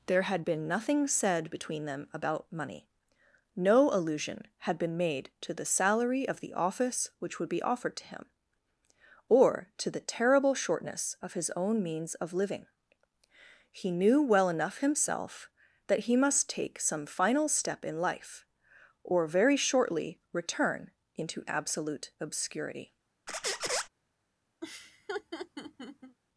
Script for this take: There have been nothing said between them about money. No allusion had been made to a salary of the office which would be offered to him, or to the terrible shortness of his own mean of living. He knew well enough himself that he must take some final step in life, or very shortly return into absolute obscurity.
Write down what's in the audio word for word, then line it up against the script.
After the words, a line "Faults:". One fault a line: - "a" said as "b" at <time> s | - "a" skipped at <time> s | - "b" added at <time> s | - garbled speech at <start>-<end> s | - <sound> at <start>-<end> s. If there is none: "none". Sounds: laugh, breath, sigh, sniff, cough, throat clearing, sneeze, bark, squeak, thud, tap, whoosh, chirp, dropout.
There had been nothing said between them about money. No allusion had been made to the salary of the office which would be offered to him, or to the terrible shortness of his own means of living. He knew well enough himself that he must take some final step in life, or very shortly return into absolute obscurity.
Faults:
- "have" said as "had" at 0.2 s
- "a" said as "the" at 5.5 s
- "mean" said as "means" at 11.8 s
- squeak at 23.3-23.9 s
- laugh at 24.6-26.2 s